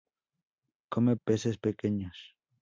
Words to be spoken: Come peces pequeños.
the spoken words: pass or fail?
pass